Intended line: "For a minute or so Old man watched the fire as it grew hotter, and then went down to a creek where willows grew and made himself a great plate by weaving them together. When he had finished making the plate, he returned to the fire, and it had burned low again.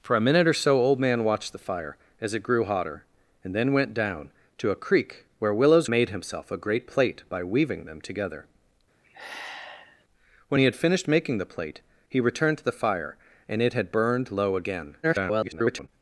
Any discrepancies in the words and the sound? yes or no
yes